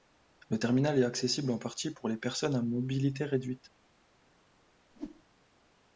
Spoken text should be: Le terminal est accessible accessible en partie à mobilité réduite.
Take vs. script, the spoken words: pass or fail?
fail